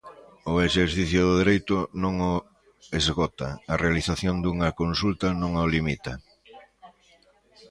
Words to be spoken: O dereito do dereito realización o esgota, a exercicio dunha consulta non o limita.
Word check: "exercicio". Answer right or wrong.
wrong